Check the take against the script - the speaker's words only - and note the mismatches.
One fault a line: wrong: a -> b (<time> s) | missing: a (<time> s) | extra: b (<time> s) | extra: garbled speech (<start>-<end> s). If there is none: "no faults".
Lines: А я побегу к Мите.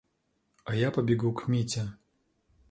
no faults